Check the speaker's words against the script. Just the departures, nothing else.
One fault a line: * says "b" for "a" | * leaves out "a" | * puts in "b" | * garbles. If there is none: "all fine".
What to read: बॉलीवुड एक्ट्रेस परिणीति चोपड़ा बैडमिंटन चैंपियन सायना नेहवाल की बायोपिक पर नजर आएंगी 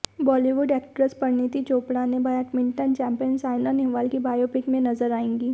* puts in "ने"
* says "में" for "पर"